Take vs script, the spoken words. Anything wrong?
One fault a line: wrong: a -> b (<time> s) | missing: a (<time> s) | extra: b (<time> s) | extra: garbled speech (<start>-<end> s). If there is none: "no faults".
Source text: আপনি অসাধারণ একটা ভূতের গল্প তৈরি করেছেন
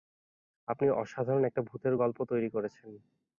no faults